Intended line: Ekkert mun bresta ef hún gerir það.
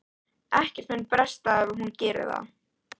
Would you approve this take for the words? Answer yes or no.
yes